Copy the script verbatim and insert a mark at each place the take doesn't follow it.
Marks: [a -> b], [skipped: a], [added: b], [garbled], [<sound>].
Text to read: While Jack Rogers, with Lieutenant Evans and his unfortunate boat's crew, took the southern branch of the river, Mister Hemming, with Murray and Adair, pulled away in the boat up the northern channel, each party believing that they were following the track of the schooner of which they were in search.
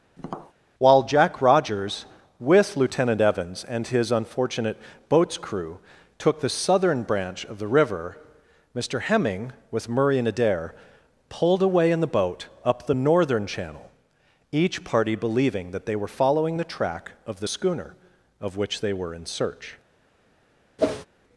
[tap] While Jack Rogers, with Lieutenant Evans and his unfortunate boat's crew, took the southern branch of the river, Mister Hemming, with Murray and Adair, pulled away in the boat up the northern channel, each party believing that they were following the track of the schooner of which they were in search. [whoosh]